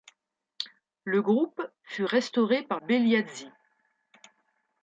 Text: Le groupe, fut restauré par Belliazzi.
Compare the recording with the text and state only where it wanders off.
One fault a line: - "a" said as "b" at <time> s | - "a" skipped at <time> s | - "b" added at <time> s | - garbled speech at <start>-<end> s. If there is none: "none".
none